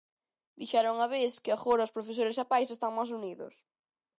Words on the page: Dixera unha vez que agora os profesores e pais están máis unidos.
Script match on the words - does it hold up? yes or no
yes